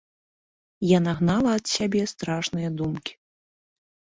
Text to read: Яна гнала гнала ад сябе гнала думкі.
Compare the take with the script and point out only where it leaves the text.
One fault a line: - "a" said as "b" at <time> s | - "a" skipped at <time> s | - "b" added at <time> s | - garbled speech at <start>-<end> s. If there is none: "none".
- "гнала" skipped at 1.5 s
- "гнала" said as "страшныя" at 2.1 s